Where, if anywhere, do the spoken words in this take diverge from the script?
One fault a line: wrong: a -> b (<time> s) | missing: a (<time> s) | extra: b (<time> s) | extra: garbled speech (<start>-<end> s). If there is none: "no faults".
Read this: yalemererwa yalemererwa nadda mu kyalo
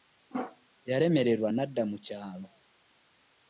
missing: yalemererwa (1.5 s)